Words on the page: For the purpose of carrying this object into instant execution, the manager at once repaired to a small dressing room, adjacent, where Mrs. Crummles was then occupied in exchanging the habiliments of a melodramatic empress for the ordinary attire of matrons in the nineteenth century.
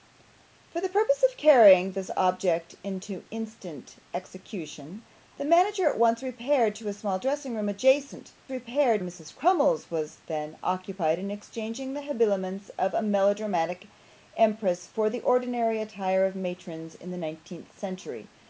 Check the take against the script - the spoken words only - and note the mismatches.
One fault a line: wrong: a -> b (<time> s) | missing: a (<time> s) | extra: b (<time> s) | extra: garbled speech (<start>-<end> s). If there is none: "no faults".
wrong: where -> repaired (8.5 s)